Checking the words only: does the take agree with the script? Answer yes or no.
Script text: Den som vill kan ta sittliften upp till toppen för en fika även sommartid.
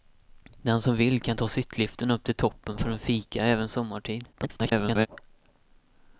no